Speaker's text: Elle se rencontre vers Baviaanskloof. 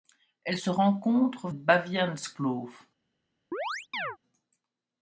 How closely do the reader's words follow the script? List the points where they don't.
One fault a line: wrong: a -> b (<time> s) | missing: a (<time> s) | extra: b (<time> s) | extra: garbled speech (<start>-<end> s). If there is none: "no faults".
missing: vers (1.5 s)